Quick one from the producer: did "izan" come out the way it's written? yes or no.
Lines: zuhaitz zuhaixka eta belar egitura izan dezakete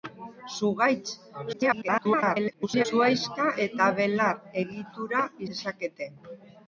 no